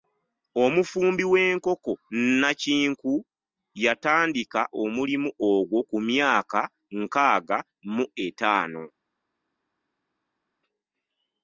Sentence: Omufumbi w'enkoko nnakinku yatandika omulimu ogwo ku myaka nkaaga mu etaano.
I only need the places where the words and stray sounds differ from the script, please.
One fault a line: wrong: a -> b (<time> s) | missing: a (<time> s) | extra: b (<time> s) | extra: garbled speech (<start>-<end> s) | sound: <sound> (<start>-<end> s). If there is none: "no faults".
no faults